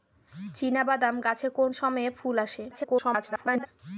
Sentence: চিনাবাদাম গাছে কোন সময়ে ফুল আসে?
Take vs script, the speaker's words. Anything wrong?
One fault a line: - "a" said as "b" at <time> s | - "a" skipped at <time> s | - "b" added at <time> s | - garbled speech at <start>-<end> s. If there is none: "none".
- garbled speech at 2.7-3.7 s